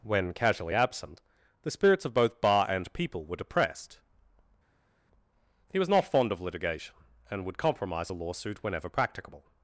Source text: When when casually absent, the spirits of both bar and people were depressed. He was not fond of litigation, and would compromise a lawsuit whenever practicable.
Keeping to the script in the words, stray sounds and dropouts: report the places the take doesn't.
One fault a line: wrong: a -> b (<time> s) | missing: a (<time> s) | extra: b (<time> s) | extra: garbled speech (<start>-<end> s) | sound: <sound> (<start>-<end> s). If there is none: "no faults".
missing: when (0.3 s)